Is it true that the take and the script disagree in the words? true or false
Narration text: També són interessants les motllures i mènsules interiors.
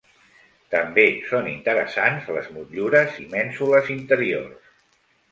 false